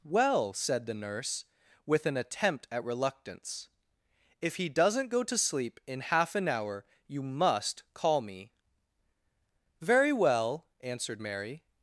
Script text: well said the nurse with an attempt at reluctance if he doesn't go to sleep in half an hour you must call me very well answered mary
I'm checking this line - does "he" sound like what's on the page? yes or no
yes